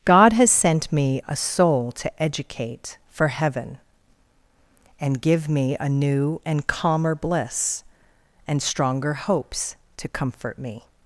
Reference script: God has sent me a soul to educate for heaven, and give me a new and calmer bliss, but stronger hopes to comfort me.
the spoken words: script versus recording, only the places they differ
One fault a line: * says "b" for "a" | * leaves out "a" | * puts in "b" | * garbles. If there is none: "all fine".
* says "and" for "but"